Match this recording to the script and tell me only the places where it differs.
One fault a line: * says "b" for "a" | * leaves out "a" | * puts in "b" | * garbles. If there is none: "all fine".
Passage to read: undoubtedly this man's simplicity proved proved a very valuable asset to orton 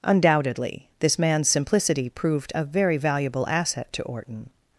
* leaves out "proved"